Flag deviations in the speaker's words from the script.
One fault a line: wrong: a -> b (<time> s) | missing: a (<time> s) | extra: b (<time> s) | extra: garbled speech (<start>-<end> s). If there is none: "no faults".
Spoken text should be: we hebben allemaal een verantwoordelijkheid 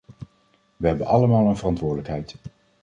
no faults